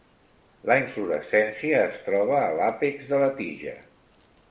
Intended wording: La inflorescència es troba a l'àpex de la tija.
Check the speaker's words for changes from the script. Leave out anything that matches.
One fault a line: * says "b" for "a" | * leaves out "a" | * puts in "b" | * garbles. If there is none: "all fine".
all fine